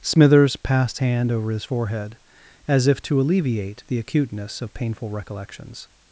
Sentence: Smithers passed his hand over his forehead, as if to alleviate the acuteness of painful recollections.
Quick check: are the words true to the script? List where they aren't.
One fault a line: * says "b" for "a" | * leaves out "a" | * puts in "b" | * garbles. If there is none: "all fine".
* leaves out "his"